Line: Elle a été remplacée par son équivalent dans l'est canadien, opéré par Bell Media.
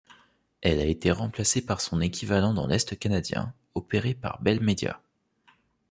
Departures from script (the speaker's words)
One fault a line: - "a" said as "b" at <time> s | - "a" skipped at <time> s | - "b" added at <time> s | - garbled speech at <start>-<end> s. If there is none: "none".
none